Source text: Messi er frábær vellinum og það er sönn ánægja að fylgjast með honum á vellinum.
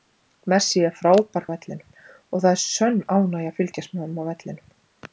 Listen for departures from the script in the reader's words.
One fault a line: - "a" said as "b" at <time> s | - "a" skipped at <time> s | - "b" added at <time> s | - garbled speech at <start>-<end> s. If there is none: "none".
none